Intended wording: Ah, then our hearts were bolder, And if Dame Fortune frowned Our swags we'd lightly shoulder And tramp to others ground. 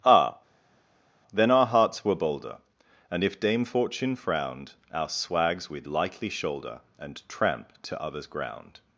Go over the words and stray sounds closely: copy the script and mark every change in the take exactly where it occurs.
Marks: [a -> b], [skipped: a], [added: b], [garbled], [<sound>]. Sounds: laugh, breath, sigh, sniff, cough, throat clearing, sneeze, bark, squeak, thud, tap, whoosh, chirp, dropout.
Ah, then our hearts were bolder, And if Dame Fortune frowned Our swags we'd lightly shoulder And tramp to others ground.